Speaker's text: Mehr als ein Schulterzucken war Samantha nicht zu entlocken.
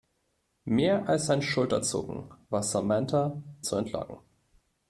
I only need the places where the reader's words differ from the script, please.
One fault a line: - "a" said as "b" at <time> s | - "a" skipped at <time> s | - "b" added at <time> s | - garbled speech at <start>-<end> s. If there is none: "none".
- "nicht" skipped at 3.4 s